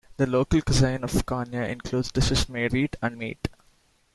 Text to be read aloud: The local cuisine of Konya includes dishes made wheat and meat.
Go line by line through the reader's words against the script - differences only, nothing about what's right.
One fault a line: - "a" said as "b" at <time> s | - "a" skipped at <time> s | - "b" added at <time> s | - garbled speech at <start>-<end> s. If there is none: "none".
none